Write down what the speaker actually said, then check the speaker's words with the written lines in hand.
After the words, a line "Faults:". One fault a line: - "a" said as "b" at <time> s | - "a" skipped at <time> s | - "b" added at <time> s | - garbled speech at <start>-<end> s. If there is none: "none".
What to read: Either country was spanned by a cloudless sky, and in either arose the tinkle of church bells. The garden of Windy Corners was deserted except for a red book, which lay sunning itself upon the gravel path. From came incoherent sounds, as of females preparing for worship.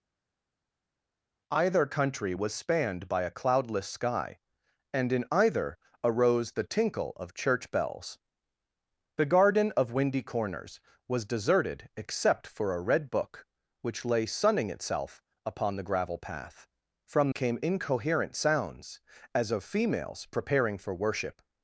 Either country was spanned by a cloudless sky, and in either arose the tinkle of church bells. The garden of Windy Corners was deserted except for a red book, which lay sunning itself upon the gravel path. From came incoherent sounds, as of females preparing for worship.
Faults:
none